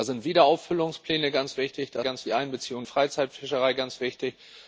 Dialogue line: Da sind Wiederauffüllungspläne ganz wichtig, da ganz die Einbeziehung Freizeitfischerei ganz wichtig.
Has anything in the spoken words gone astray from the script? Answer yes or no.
no